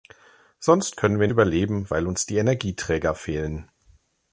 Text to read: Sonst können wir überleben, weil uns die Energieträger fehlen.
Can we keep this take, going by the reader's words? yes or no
yes